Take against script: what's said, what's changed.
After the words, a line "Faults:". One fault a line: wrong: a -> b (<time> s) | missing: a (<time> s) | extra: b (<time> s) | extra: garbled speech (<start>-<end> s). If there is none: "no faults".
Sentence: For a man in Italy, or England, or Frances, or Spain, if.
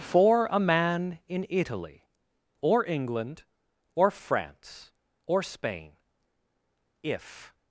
For a man in Italy, or England, or France, or Spain, if.
Faults:
wrong: Frances -> France (4.1 s)